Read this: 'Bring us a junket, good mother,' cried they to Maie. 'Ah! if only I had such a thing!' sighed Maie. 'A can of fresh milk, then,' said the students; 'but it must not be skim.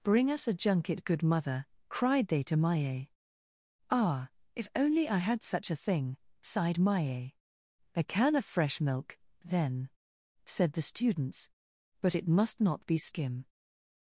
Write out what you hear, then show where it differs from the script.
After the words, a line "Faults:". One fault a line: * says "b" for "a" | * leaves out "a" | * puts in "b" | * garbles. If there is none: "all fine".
'Bring us a junket, good mother,' cried they to Maie. 'Ah! if only I had such a thing!' sighed Maie. 'A can of fresh milk, then,' said the students; 'but it must not be skim.
Faults:
all fine